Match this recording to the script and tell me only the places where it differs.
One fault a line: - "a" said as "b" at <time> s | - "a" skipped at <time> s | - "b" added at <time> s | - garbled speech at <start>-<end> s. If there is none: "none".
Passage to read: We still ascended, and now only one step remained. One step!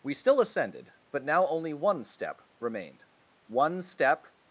- "and" said as "but" at 1.1 s